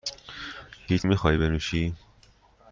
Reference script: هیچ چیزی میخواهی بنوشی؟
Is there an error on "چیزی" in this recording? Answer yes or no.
yes